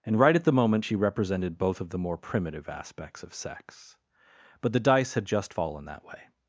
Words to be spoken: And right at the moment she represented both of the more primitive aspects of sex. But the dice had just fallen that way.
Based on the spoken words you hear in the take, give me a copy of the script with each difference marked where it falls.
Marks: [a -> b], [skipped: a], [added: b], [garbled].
And right at the moment she represented both of the more primitive aspects of sex. But the dice had just fallen that way.